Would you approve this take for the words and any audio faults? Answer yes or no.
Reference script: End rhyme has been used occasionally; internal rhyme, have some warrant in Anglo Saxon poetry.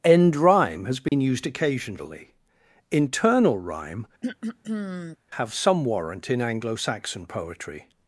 no